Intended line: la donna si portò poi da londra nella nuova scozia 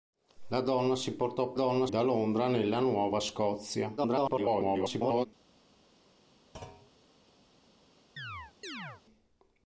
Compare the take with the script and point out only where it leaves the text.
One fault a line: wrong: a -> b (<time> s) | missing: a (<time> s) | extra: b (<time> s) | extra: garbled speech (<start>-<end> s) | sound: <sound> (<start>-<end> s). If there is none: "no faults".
wrong: poi -> donna (1.5 s)
extra: garbled speech (4.0-5.3 s)
sound: thud (6.5-6.9 s)
sound: chirp (8.2-9.0 s)